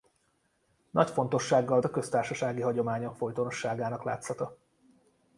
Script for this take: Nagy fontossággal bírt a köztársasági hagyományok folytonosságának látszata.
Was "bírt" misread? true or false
true